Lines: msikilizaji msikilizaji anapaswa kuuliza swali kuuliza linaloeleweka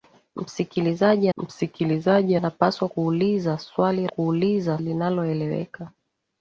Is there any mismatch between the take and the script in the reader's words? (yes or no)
no